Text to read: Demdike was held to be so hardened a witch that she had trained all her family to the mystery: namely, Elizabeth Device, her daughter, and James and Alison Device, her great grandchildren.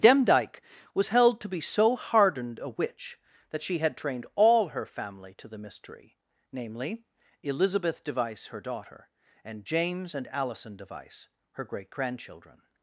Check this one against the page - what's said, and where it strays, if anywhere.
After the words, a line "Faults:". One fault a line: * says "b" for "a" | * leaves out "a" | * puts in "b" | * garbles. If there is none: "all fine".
Demdike was held to be so hardened a witch that she had trained all her family to the mystery: namely, Elizabeth Device, her daughter, and James and Alison Device, her great grandchildren.
Faults:
all fine